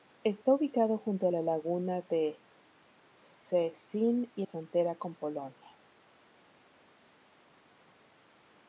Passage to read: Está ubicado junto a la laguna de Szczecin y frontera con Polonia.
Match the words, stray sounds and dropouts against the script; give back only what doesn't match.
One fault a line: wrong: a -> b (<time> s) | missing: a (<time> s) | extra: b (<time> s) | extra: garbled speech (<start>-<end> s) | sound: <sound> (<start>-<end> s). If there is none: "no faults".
no faults